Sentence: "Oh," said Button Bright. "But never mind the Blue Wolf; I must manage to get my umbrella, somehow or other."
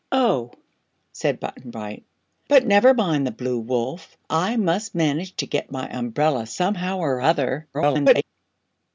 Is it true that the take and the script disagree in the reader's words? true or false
true